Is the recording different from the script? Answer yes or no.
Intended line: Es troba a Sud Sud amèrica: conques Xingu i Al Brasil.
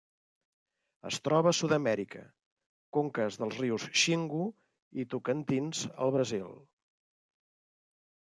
yes